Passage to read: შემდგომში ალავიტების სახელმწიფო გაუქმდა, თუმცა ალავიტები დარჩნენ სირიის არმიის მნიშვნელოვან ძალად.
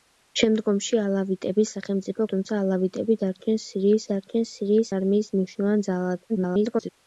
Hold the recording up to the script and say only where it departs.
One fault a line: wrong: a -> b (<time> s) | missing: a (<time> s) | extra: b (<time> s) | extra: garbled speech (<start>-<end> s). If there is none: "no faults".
missing: გაუქმდა (2.2 s)
extra: დარჩნენ სირიის (4.1 s)
extra: garbled speech (6.3-6.9 s)